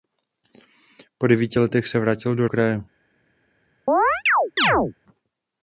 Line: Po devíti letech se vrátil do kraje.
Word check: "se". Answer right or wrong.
right